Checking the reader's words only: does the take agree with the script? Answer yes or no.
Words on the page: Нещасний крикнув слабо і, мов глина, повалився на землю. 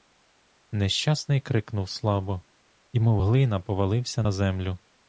yes